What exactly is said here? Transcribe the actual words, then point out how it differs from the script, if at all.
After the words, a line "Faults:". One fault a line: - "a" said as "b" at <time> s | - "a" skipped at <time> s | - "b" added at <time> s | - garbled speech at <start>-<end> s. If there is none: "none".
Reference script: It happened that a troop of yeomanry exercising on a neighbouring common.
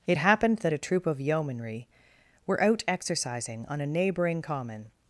It happened that a troop of yeomanry were out exercising on a neighbouring common.
Faults:
- "were out" added at 2.5 s